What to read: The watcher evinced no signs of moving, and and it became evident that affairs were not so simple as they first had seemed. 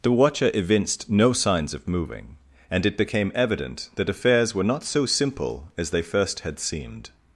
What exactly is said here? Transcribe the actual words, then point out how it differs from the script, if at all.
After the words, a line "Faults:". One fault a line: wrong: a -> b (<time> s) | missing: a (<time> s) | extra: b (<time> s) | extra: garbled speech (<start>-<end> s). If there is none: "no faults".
The watcher evinced no signs of moving, and it became evident that affairs were not so simple as they first had seemed.
Faults:
missing: and (2.9 s)